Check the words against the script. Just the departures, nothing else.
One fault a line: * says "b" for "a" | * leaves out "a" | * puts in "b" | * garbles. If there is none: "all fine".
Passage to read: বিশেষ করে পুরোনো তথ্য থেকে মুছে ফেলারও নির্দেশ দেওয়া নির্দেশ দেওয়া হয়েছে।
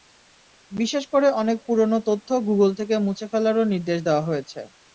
* puts in "অনেক"
* puts in "গুগল"
* leaves out "নির্দেশ দেওয়া"